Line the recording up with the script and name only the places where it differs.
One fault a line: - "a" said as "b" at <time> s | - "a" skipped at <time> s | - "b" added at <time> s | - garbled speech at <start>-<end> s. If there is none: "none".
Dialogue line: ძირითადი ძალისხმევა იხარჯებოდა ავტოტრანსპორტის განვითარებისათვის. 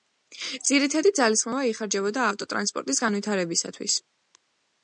none